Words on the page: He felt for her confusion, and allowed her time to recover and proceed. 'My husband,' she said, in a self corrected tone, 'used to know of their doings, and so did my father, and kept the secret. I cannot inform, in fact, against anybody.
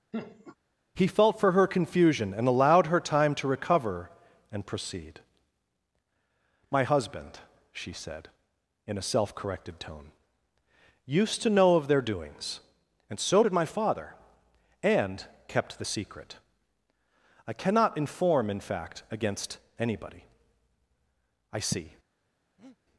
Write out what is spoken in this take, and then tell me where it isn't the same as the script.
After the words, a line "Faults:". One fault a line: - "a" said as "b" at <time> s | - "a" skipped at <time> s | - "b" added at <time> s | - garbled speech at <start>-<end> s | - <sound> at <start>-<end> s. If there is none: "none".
He felt for her confusion, and allowed her time to recover and proceed. 'My husband,' she said, in a self corrected tone, 'used to know of their doings, and so did my father, and kept the secret. I cannot inform, in fact, against anybody. 'I see
Faults:
- laugh at 0.1-0.6 s
- "I see" added at 21.5 s
- breath at 22.6-22.8 s